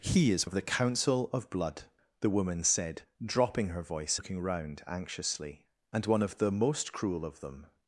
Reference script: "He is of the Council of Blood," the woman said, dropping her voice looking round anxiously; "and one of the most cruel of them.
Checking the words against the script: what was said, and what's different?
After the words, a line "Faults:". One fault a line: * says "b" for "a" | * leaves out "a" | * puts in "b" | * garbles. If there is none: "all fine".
"He is of the Council of Blood," the woman said, dropping her voice looking round anxiously; "and one of the most cruel of them.
Faults:
all fine